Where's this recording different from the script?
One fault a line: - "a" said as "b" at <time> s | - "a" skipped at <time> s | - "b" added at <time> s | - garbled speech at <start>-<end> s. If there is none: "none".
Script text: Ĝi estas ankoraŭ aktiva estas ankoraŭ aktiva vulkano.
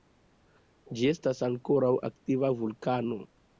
- "estas ankoraŭ aktiva" skipped at 2.5 s